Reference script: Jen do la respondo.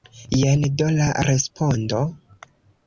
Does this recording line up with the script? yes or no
yes